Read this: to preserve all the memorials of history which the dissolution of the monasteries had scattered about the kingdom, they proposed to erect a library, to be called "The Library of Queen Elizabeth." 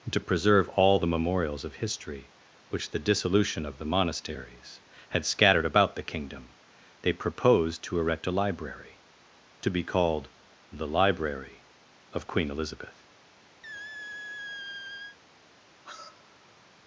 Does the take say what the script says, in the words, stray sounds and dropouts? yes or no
no